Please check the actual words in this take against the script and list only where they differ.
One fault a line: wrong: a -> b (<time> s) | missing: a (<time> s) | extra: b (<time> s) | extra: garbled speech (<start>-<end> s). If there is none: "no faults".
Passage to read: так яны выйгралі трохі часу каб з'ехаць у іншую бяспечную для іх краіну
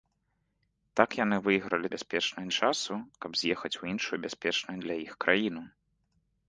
wrong: трохі -> бяспечную (2.0 s)